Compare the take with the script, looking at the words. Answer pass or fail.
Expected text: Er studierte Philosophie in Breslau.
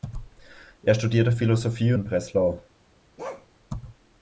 pass